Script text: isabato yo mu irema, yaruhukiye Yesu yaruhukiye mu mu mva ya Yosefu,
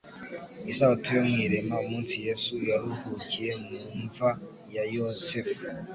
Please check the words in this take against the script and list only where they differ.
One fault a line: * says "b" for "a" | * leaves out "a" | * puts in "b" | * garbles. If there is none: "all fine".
* says "umunsi" for "yaruhukiye"
* leaves out "mu"